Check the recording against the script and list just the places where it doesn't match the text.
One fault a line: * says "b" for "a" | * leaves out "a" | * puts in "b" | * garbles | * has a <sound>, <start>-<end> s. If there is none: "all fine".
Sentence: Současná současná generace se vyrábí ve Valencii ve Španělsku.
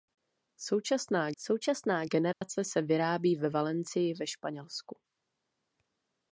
* has a dropout, 2.3-2.4 s